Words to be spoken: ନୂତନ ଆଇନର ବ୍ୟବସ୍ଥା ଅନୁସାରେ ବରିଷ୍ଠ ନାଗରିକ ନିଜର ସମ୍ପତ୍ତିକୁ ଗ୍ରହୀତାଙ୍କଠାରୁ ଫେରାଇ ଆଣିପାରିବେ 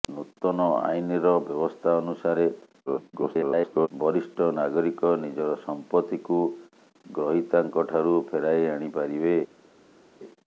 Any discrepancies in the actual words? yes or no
yes